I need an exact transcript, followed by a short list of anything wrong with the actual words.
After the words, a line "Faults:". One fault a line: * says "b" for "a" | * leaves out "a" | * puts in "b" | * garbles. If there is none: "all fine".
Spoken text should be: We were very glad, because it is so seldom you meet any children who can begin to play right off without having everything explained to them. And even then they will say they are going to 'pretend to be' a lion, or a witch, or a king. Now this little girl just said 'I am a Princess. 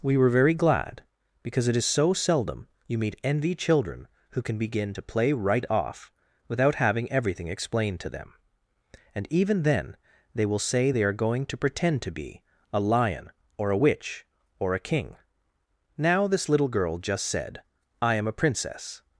We were very glad, because it is so seldom you meet envy children who can begin to play right off without having everything explained to them. And even then they will say they are going to 'pretend to be' a lion, or a witch, or a king. Now this little girl just said 'I am a Princess.
Faults:
* says "envy" for "any"